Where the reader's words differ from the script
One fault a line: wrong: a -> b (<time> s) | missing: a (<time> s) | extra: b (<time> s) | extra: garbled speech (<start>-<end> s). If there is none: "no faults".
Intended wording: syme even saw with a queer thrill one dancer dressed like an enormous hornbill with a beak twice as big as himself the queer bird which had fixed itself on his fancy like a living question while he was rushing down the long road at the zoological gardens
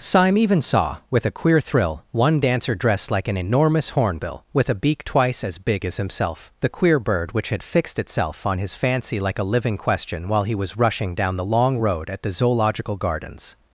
no faults